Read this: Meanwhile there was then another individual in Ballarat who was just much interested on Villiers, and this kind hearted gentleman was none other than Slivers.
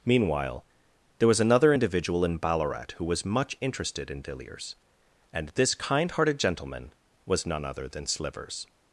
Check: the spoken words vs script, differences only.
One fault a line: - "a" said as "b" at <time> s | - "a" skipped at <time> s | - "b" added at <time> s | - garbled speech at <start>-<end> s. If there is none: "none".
- "then" skipped at 1.4 s
- "just" skipped at 3.2 s
- "on" said as "in" at 4.1 s